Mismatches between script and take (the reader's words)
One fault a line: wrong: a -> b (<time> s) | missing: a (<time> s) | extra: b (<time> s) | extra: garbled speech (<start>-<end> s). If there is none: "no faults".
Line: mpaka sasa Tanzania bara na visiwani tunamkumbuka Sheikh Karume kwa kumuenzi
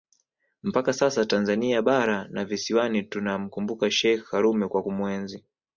no faults